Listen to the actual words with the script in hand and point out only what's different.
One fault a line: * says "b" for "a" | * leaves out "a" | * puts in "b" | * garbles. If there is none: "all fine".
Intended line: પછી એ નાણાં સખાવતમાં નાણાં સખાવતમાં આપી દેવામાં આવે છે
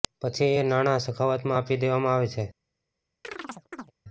* leaves out "નાણાં સખાવતમાં"